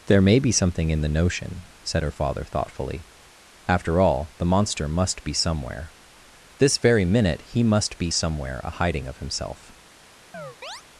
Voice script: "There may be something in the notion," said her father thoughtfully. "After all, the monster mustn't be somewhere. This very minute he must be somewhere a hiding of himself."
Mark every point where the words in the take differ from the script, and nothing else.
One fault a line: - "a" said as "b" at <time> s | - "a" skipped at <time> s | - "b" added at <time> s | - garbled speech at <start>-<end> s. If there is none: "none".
- "mustn't" said as "must" at 4.9 s